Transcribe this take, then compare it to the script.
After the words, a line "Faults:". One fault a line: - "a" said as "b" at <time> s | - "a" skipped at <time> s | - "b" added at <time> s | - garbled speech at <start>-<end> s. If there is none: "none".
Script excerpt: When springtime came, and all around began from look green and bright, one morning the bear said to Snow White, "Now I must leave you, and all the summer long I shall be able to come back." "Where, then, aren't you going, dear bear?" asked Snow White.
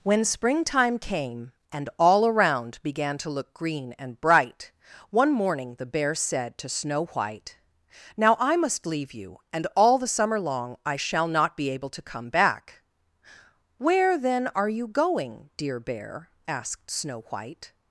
When springtime came, and all around began to look green and bright, one morning the bear said to Snow White, "Now I must leave you, and all the summer long I shall not be able to come back." "Where, then, are you going, dear bear?" asked Snow White.
Faults:
- "from" said as "to" at 3.2 s
- "not" added at 11.3 s
- "aren't" said as "are" at 14.6 s